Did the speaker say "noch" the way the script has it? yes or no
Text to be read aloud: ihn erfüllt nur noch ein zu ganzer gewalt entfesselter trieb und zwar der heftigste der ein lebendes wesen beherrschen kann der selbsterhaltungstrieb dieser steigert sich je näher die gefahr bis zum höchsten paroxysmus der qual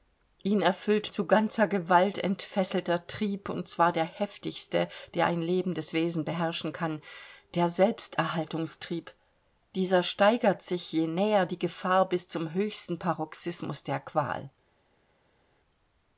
no